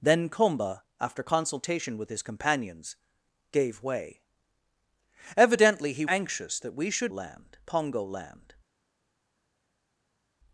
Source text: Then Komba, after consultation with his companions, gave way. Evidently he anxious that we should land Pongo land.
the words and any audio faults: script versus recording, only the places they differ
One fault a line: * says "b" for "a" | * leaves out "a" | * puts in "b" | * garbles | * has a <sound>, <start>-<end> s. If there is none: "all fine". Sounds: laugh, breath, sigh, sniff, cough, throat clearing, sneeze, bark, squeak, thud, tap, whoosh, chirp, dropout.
all fine